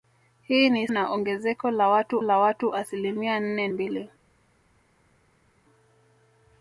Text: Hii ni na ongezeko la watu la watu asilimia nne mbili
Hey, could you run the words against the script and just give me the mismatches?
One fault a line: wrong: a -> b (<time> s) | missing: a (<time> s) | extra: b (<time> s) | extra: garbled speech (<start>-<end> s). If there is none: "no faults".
no faults